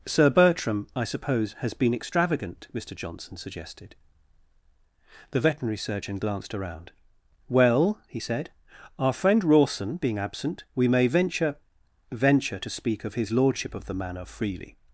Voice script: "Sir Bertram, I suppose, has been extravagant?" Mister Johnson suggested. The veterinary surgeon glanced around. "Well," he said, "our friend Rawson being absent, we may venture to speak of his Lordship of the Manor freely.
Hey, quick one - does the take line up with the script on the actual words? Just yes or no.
no